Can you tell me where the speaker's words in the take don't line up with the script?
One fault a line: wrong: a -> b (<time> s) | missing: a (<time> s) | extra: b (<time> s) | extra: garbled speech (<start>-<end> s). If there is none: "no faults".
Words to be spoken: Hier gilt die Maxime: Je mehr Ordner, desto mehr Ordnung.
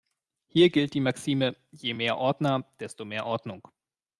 no faults